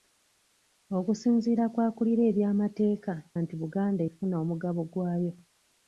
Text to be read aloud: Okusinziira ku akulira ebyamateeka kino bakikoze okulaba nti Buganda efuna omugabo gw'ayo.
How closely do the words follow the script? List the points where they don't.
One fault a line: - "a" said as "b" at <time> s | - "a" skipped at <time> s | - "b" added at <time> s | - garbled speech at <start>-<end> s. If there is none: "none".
- "kino bakikoze okulaba" skipped at 3.1 s